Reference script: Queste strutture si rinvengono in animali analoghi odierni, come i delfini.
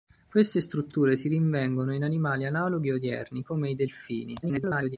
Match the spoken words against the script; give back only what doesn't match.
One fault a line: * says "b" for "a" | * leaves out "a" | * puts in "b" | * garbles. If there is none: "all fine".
* garbles